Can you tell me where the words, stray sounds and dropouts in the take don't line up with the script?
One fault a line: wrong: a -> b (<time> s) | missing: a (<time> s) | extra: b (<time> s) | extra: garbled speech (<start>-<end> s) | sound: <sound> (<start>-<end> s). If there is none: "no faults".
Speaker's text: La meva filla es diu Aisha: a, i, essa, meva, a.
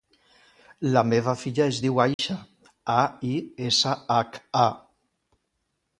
sound: dropout (2.1-2.2 s)
wrong: meva -> hac (4.2 s)